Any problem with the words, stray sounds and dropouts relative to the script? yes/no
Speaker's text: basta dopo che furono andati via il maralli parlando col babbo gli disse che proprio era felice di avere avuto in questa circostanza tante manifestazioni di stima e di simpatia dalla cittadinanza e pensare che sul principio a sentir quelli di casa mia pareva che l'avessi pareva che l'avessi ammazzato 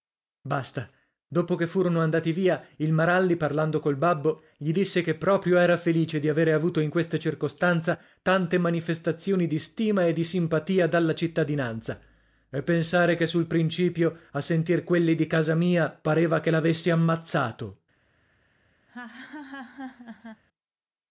yes